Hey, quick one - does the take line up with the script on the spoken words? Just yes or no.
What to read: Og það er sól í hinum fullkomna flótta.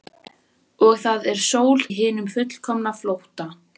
yes